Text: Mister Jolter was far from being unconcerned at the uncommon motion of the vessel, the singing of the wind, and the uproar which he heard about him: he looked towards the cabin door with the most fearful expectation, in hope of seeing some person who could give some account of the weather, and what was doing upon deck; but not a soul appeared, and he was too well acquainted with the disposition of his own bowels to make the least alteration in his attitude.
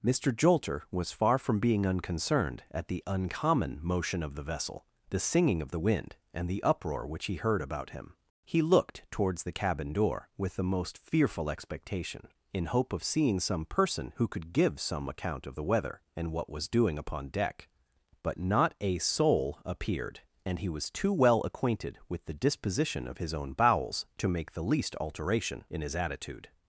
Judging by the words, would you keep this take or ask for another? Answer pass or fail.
pass